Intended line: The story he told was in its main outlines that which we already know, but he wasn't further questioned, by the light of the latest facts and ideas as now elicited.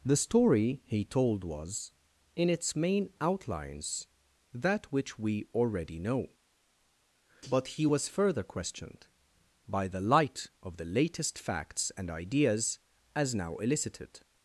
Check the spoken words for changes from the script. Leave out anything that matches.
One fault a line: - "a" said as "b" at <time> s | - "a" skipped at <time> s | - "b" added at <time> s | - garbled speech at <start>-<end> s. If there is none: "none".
- "wasn't" said as "was" at 7.9 s